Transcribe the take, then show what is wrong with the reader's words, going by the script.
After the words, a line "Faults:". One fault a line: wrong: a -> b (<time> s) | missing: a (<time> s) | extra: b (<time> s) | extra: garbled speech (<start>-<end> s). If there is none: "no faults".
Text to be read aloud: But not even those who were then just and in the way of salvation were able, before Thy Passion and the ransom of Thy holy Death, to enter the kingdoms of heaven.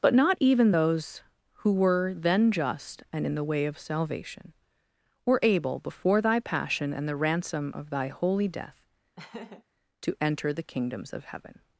But not even those who were then just and in the way of salvation were able, before Thy Passion and the ransom of Thy holy Death, to enter the kingdoms of heaven.
Faults:
no faults